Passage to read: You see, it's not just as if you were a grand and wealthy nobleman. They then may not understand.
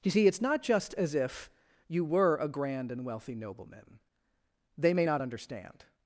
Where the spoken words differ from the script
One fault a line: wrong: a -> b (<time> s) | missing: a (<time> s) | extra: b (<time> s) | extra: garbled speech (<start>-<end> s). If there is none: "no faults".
missing: then (4.9 s)